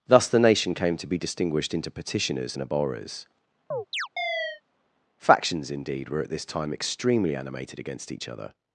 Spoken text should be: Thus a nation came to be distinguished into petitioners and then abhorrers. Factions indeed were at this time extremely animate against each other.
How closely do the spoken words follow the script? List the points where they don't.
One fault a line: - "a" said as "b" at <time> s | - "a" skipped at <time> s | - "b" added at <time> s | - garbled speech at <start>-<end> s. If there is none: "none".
- "a" said as "the" at 0.3 s
- "then" skipped at 2.6 s
- "animate" said as "animated" at 7.3 s